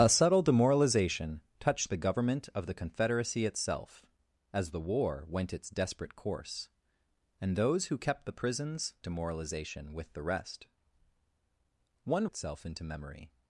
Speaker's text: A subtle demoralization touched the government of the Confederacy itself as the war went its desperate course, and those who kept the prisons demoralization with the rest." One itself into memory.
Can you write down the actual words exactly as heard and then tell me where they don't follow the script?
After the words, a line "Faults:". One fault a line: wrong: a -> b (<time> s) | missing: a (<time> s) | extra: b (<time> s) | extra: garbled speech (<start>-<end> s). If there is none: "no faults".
A subtle demoralization touched the government of the Confederacy itself as the war went its desperate course, and those who kept the prisons demoralization with the rest." One itself into memory.
Faults:
no faults